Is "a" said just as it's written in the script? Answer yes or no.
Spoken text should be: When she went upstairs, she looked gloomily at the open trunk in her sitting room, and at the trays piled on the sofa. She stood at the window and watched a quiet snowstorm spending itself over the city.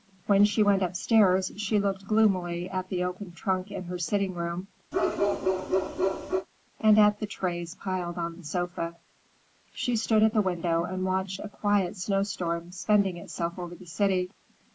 yes